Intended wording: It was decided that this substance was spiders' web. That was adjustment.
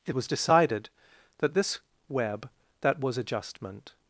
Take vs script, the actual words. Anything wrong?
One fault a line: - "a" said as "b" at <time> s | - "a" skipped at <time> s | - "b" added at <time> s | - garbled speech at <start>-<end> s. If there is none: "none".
- "substance was spiders" skipped at 1.8 s